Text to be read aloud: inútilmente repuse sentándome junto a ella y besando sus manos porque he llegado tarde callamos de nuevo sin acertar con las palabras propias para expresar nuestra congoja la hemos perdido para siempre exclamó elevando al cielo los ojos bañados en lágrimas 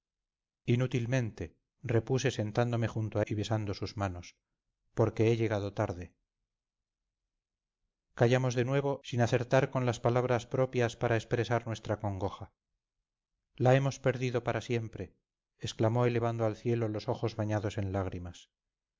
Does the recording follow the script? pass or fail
fail